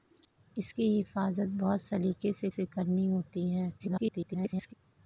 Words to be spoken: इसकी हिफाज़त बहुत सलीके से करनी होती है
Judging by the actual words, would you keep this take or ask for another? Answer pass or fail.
fail